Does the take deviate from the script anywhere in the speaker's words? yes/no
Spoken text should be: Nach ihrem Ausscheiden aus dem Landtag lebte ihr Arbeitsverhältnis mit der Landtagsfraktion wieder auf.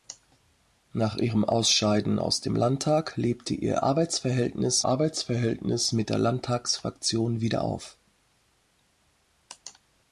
yes